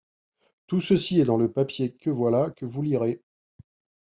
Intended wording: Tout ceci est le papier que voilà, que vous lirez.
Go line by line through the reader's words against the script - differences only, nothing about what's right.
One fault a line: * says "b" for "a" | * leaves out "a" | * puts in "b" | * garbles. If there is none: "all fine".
* puts in "dans"